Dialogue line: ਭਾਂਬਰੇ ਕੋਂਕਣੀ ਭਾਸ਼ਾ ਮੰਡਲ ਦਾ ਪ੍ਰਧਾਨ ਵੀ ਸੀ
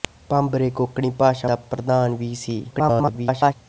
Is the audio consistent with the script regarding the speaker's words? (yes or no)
no